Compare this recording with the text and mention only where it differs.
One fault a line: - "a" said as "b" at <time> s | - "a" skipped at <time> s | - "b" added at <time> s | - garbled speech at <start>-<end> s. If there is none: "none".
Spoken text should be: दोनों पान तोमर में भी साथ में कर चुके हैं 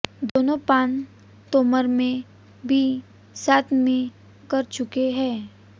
none